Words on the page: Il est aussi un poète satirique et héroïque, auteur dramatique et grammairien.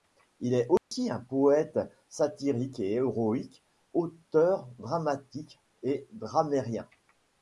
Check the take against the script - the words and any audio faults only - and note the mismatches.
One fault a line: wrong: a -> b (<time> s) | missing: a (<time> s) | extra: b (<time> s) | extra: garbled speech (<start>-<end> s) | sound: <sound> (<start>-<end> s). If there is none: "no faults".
sound: dropout (0.8-0.9 s)